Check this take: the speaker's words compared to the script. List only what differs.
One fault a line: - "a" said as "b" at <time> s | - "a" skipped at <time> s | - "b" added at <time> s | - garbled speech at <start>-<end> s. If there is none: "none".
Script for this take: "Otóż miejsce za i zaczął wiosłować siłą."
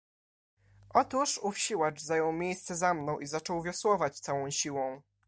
- "ów siłacz zajął" added at 1.4 s
- "mną" added at 2.9 s
- "całą" added at 4.2 s